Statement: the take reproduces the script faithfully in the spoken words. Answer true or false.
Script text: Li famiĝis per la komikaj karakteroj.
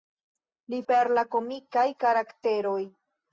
false